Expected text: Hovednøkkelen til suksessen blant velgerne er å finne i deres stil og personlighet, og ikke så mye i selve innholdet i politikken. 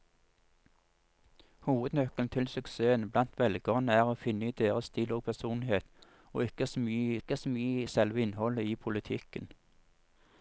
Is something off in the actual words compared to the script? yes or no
yes